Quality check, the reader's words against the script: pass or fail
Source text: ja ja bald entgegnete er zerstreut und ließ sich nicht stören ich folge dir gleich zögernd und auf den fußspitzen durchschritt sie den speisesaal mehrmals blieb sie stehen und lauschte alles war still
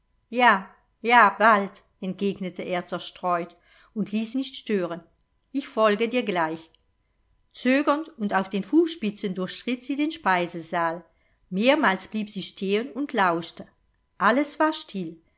fail